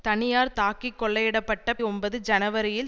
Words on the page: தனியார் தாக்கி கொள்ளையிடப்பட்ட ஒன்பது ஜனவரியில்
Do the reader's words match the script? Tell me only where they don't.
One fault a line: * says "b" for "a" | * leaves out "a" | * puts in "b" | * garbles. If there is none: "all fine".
all fine